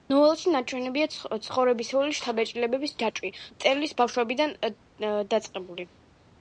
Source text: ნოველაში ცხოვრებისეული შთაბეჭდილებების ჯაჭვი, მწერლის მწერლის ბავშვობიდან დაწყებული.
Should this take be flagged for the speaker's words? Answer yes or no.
yes